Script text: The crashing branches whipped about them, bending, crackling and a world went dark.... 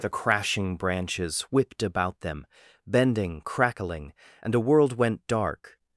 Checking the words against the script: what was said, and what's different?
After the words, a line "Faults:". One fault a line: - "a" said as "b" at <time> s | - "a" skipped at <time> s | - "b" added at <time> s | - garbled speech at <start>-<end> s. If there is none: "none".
The crashing branches whipped about them, bending, crackling and a world went dark....
Faults:
none